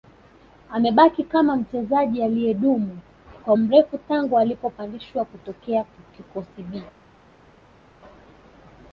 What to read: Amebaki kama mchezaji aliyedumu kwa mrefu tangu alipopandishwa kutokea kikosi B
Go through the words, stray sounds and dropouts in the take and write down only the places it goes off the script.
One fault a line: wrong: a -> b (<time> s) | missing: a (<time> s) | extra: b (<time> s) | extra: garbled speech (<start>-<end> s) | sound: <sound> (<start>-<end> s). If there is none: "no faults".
no faults